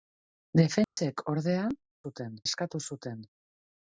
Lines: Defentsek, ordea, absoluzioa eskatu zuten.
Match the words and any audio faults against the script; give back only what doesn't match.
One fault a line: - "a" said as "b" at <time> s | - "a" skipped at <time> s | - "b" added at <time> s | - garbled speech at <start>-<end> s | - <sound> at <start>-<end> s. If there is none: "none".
- dropout at 0.8-1.0 s
- "absoluzioa" said as "zuten" at 2.0 s